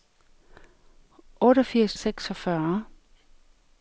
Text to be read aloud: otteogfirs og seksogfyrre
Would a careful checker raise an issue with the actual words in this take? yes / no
no